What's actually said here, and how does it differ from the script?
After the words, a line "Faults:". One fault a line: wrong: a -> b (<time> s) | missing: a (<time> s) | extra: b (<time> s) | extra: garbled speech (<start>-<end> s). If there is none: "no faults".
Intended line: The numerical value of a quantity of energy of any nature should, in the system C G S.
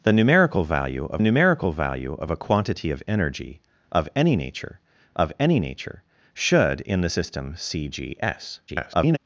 The numerical value of numerical value of a quantity of energy of any nature of any nature should, in the system C G S. [garbled]
Faults:
extra: numerical value of (1.2 s)
extra: of any nature (5.1 s)
extra: garbled speech (8.7-9.2 s)